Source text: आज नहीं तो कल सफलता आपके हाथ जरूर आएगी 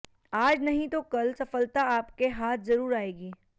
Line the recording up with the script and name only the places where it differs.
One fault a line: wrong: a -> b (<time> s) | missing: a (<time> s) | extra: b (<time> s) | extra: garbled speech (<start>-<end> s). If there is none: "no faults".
no faults